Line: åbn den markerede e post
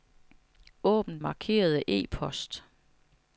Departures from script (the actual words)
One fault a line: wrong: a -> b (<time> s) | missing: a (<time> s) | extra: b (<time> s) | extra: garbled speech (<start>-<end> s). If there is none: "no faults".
missing: den (1.2 s)